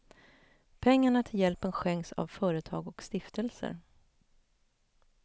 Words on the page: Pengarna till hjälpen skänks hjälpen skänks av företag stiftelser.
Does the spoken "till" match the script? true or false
true